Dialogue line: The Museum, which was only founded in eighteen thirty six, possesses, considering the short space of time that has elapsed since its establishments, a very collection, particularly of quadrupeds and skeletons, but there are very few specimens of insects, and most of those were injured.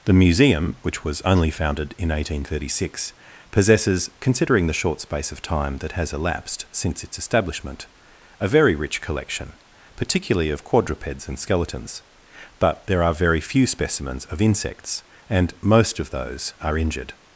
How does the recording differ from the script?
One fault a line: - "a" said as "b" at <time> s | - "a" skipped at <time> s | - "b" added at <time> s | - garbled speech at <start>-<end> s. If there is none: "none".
- "establishments" said as "establishment" at 7.2 s
- "rich" added at 8.7 s
- "were" said as "are" at 16.6 s